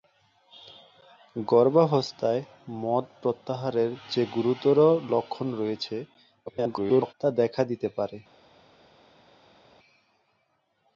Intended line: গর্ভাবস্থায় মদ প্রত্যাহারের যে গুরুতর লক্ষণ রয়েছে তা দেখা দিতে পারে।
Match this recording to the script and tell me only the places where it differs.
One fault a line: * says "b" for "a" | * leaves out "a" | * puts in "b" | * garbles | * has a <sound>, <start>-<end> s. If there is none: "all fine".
* garbles